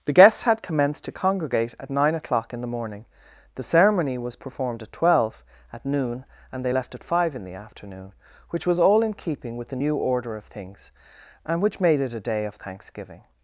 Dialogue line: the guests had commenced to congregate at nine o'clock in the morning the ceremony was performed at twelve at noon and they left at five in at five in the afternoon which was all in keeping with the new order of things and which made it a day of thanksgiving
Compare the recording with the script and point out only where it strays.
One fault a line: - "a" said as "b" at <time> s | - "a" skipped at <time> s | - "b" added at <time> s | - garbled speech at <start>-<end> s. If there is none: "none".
- "at five in" skipped at 7.5 s